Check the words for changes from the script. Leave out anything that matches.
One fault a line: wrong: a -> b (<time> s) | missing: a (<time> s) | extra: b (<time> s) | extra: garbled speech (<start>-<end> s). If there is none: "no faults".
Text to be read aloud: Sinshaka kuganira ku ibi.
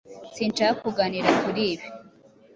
wrong: ku -> kuri (1.4 s)